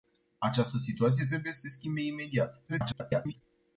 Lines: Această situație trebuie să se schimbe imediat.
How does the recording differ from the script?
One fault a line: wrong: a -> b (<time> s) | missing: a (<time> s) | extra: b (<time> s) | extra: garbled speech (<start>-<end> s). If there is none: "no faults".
extra: garbled speech (2.7-3.4 s)